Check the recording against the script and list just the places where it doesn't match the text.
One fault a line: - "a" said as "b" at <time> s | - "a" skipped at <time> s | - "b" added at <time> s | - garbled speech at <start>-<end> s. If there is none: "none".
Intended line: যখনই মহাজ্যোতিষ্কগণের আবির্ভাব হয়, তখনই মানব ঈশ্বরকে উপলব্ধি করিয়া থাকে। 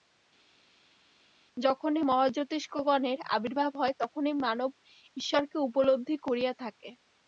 none